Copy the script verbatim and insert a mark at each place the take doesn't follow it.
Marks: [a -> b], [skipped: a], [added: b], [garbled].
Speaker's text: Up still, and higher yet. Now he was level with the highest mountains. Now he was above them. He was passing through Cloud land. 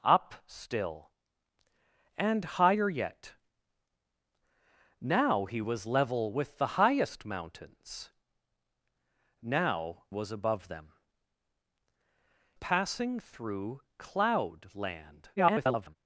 Up still, and higher yet. Now he was level with the highest mountains. Now [skipped: he] was above them. [skipped: He was] passing through Cloud land. [garbled]